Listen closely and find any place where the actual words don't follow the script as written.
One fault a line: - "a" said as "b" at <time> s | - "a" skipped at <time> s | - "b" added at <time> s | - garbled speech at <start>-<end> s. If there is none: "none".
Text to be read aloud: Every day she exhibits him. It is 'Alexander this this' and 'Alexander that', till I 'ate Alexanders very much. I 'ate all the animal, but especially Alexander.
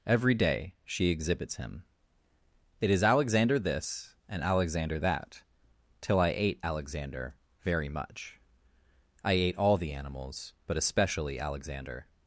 - "this" skipped at 4.2 s
- "Alexanders" said as "Alexander" at 6.6 s
- "animal" said as "animals" at 9.9 s